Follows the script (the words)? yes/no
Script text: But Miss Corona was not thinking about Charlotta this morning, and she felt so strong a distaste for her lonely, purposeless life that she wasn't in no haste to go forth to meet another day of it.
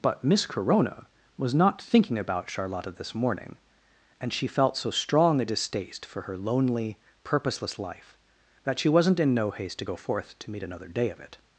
yes